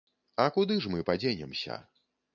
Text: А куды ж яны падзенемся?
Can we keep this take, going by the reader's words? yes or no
no